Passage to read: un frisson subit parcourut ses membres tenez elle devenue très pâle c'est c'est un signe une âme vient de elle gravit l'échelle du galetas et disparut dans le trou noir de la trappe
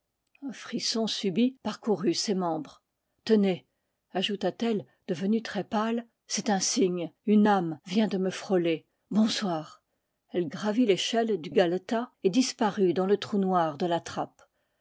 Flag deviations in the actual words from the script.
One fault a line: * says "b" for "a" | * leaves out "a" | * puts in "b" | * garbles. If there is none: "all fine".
* puts in "ajouta t"
* leaves out "c'est"
* puts in "me frôler bonsoir"